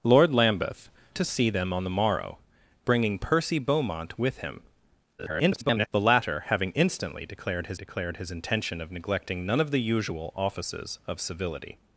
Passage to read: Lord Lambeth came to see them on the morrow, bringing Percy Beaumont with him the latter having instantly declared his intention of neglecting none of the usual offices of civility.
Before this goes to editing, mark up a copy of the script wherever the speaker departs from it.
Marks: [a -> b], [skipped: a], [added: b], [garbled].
Lord Lambeth [skipped: came] to see them on the morrow, bringing Percy Beaumont with him [garbled] the latter having instantly declared his [added: declared his] intention of neglecting none of the usual offices of civility.